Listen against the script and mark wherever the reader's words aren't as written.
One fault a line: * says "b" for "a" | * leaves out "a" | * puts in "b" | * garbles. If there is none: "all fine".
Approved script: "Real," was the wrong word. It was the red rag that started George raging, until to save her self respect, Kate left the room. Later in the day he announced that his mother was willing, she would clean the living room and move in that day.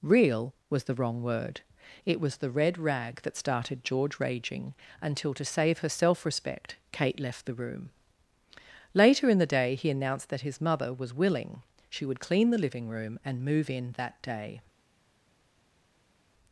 all fine